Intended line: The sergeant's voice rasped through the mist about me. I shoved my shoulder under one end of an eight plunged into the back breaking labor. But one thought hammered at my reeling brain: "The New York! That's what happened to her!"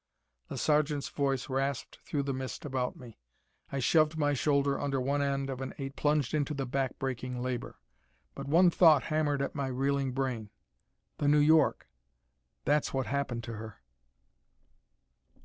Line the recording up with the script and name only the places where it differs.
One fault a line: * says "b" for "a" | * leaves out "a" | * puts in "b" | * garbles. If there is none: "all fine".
all fine